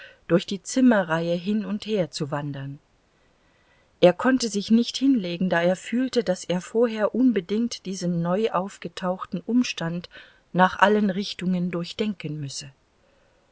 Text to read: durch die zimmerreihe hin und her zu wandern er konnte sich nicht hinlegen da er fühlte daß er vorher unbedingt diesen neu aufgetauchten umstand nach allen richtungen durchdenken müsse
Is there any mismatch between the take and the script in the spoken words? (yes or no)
no